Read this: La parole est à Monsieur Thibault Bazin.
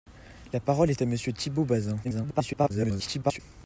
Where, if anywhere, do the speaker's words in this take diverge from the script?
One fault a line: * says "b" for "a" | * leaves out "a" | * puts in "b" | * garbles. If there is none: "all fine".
* garbles